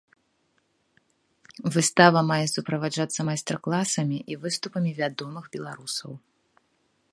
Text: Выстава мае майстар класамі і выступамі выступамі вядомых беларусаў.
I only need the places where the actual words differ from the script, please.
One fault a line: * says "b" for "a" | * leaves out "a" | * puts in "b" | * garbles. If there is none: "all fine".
* puts in "суправаджацца"
* leaves out "выступамі"